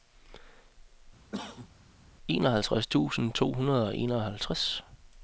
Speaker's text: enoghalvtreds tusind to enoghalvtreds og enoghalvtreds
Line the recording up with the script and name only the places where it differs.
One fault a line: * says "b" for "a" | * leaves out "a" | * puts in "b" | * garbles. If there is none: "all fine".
* says "hundrede" for "enoghalvtreds"